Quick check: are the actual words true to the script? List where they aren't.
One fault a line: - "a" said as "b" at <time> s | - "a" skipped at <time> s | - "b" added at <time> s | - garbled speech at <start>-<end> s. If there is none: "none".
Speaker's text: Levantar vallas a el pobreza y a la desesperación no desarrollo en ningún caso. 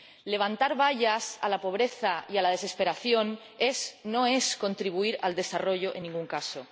- "el" said as "la" at 1.5 s
- "es contribuir al" added at 4.3 s